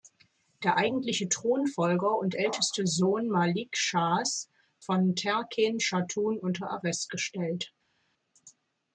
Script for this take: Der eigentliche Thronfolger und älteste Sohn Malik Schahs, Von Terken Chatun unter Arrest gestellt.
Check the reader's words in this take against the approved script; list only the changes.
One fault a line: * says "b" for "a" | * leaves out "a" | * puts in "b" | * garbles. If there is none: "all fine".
all fine